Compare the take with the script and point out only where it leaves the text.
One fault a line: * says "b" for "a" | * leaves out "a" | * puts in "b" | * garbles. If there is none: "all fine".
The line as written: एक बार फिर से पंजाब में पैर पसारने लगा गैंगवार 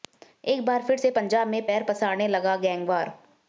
all fine